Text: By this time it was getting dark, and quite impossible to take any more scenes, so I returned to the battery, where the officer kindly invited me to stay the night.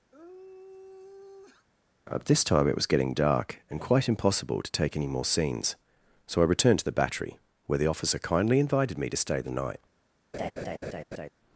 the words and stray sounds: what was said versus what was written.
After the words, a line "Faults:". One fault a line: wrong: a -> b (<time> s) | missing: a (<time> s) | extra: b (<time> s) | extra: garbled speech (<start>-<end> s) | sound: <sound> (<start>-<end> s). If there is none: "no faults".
At this time it was getting dark, and quite impossible to take any more scenes, so I returned to the battery, where the officer kindly invited me to stay the night.
Faults:
sound: sigh (0.1-1.7 s)
wrong: By -> At (2.1 s)
sound: laugh (10.3-11.3 s)